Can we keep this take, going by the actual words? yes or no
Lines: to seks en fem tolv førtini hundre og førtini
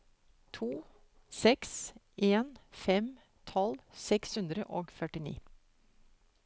no